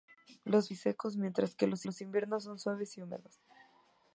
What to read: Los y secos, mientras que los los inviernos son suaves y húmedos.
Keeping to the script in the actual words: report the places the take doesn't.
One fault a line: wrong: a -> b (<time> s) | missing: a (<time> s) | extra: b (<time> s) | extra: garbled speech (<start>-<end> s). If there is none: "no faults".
no faults